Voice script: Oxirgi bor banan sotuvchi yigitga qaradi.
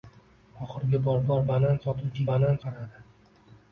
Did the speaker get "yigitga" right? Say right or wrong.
wrong